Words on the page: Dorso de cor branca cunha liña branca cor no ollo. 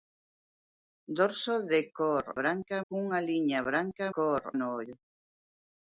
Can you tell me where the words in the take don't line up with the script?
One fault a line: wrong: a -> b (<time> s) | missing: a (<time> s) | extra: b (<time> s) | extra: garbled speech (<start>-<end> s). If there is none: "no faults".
no faults